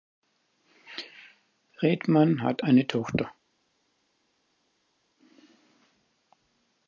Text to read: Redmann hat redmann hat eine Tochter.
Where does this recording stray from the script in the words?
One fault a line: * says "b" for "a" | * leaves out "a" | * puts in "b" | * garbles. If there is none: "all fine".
* leaves out "redmann hat"